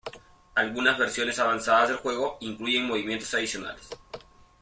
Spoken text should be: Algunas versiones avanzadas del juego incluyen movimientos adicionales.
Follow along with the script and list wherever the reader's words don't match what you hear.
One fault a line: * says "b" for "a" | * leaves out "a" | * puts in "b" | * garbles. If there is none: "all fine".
all fine